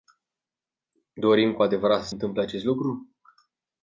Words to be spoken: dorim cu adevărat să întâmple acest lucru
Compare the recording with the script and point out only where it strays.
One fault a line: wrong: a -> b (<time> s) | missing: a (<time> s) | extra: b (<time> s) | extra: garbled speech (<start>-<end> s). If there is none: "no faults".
no faults